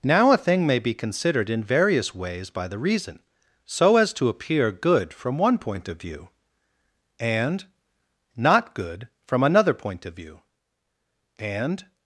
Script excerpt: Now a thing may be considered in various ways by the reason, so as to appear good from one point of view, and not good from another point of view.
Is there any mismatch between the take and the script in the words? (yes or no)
yes